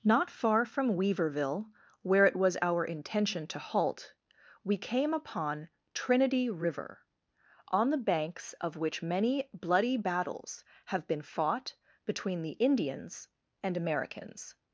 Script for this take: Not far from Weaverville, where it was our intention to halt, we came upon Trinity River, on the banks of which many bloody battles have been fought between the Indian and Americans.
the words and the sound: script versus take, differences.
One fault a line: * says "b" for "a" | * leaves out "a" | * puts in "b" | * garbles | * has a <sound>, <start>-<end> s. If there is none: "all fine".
* says "Indians" for "Indian"